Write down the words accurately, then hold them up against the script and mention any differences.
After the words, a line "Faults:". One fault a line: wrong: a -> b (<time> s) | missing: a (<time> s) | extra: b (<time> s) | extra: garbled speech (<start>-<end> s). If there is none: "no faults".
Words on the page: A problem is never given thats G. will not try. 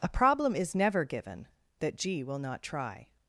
A problem is never given that G. will not try.
Faults:
wrong: thats -> that (1.8 s)